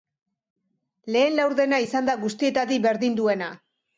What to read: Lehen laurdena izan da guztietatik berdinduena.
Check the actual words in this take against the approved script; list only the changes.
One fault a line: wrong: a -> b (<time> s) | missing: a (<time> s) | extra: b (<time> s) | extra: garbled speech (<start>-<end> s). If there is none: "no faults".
no faults